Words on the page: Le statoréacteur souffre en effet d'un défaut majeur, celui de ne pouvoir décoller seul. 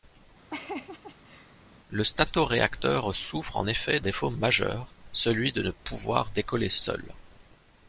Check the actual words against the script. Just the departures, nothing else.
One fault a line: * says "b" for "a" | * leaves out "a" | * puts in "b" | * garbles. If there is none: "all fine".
* leaves out "d'un"